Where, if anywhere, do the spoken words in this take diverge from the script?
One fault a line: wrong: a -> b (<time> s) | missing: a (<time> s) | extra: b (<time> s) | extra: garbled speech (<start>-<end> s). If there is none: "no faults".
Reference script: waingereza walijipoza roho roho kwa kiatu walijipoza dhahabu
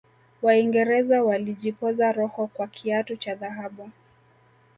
missing: roho (2.5 s)
wrong: walijipoza -> cha (3.2 s)